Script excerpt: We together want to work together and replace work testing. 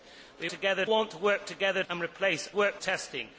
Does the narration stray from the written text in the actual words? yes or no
no